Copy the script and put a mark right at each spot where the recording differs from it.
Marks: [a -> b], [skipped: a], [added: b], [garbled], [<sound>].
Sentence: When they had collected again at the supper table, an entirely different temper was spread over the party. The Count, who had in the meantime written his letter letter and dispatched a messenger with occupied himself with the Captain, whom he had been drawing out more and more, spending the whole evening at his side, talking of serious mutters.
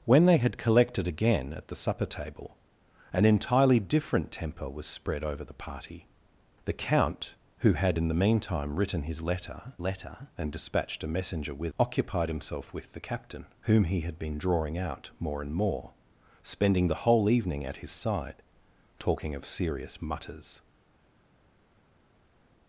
When they had collected again at the supper table, an entirely different temper was spread over the party. The Count, who had in the meantime written his letter letter and dispatched a messenger with occupied himself with the Captain, whom he had been drawing out more and more, spending the whole evening at his side, talking of serious mutters.